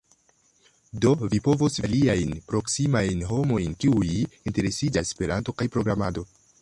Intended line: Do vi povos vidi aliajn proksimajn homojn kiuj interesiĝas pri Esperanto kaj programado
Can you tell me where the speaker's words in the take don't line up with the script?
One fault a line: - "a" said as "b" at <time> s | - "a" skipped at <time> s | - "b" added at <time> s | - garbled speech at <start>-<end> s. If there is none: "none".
- "vidi" skipped at 1.8 s
- "pri" skipped at 5.2 s